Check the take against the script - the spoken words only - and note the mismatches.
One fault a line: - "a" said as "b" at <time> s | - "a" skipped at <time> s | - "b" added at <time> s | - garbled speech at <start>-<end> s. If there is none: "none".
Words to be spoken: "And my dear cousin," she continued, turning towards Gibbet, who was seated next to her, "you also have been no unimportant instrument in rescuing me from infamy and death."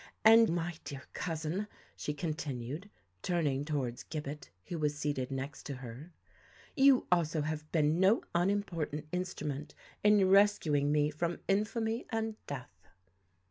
none